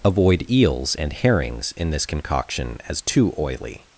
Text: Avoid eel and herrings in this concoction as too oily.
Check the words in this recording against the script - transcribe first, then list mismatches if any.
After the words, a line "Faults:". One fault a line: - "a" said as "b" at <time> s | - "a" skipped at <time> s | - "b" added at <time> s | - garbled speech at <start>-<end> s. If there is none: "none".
Avoid eels and herrings in this concoction as too oily.
Faults:
- "eel" said as "eels" at 0.5 s